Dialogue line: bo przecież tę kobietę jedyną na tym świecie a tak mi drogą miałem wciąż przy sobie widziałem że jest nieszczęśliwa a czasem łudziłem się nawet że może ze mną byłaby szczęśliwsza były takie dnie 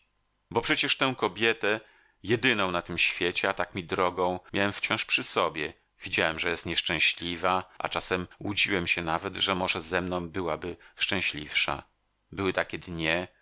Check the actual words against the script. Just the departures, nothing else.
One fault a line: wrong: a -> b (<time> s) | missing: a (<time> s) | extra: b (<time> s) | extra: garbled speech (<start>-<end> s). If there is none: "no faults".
no faults